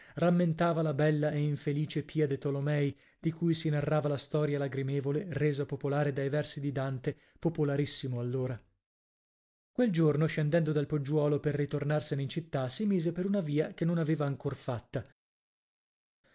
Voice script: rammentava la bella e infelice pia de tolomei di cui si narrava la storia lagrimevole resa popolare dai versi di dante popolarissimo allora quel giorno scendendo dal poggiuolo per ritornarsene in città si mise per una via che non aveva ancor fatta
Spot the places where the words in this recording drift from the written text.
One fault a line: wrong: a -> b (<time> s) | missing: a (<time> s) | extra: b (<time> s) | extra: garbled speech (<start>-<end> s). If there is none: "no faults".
no faults